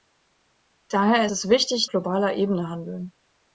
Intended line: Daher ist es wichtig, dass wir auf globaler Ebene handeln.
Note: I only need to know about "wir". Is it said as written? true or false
false